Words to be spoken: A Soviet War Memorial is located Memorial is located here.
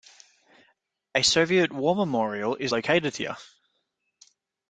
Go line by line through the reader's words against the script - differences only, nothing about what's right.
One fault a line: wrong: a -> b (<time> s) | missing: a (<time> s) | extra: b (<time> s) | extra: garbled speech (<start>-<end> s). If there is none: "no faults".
missing: Memorial is located (3.2 s)